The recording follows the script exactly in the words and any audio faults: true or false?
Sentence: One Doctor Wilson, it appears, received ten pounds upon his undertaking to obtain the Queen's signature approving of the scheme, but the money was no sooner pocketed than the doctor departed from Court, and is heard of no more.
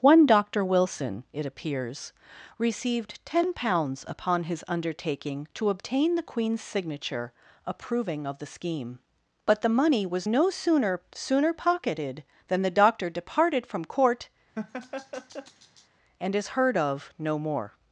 false